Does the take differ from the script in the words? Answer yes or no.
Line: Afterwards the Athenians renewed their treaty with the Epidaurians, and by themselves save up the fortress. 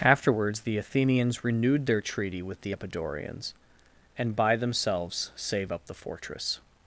no